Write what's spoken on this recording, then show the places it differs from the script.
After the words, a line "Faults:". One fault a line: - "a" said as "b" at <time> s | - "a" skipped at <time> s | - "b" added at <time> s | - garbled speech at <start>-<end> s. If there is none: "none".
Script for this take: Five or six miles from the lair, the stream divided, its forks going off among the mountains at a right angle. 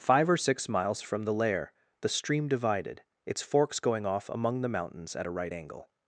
Five or six miles from the lair, the stream divided, its forks going off among the mountains at a right angle.
Faults:
none